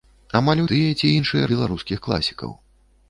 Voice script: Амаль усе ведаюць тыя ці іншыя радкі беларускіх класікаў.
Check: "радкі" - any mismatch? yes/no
yes